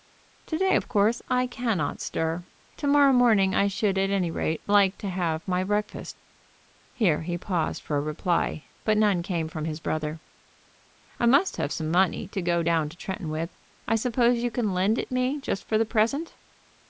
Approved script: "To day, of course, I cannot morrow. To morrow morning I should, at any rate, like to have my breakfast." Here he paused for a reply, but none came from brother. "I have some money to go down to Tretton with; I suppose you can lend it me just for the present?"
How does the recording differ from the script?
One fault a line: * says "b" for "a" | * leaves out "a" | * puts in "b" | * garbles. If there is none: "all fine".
* says "stir" for "morrow"
* puts in "his"
* puts in "must"